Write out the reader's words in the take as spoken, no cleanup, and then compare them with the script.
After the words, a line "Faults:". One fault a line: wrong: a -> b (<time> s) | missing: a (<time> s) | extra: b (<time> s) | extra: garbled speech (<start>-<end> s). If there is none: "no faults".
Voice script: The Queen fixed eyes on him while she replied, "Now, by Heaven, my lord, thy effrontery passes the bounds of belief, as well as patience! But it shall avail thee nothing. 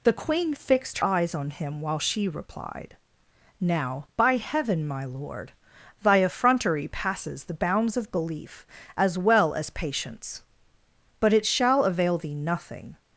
The Queen fixed eyes on him while she replied, "Now, by Heaven, my lord, thy effrontery passes the bounds of belief, as well as patience! But it shall avail thee nothing.
Faults:
no faults